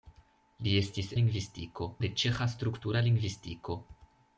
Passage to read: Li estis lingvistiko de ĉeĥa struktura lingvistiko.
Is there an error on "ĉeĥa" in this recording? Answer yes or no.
no